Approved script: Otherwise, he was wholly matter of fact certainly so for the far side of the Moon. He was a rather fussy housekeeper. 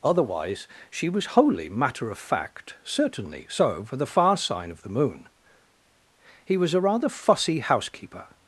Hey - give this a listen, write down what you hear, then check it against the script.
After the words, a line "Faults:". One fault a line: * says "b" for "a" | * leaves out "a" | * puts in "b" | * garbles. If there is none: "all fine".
Otherwise, she was wholly matter of fact certainly so for the far sign of the Moon. He was a rather fussy housekeeper.
Faults:
* says "she" for "he"
* says "sign" for "side"